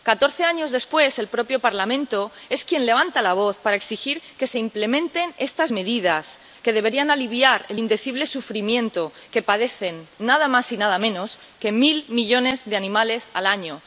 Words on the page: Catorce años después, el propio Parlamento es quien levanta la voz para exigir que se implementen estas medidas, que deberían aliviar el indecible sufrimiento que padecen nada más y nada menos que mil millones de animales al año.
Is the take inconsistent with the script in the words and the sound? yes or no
no